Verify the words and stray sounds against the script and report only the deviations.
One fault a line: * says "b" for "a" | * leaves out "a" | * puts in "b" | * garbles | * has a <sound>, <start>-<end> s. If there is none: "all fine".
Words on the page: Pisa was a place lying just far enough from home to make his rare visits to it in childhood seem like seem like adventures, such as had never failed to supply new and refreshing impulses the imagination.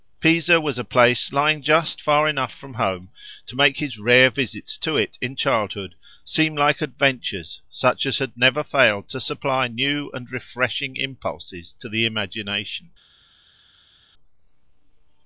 * leaves out "seem like"
* puts in "to"